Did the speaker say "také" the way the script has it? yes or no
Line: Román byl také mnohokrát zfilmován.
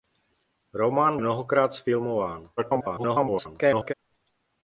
no